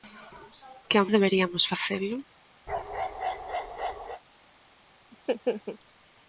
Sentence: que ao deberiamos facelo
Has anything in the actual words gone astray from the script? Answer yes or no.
no